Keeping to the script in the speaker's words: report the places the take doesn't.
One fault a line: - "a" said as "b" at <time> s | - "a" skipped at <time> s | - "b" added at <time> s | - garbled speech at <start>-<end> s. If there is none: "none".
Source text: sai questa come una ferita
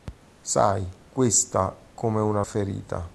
none